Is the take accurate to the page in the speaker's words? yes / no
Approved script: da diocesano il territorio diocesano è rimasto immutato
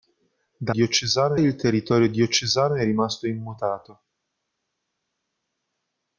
yes